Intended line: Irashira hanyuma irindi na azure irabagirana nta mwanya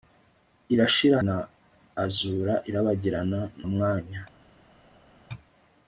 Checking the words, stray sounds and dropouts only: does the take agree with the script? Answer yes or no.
no